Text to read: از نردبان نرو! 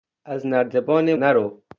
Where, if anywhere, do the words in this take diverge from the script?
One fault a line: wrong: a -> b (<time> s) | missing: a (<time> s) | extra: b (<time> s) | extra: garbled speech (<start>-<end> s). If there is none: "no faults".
no faults